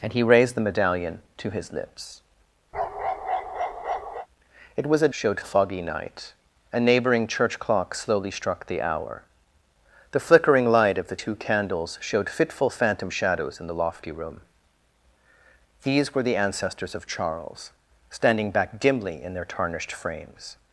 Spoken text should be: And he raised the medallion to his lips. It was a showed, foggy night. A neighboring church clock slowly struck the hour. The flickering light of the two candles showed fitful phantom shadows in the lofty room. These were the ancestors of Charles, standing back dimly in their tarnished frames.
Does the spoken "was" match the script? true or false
true